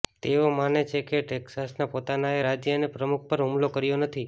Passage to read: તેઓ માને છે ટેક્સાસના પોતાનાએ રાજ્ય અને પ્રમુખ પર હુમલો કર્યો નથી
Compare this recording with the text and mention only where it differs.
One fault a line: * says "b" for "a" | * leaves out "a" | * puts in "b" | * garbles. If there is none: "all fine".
* puts in "કે"